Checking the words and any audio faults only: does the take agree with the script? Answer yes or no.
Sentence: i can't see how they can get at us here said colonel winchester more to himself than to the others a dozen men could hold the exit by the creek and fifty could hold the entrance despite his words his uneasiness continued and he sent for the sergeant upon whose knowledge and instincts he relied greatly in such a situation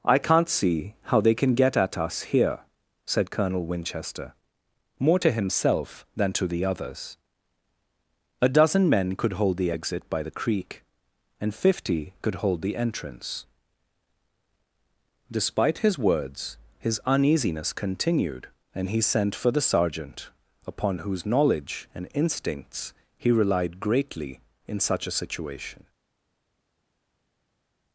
yes